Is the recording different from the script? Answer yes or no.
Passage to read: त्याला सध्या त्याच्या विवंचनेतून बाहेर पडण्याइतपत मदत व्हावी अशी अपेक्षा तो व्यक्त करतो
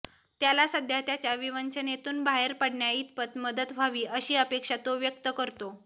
no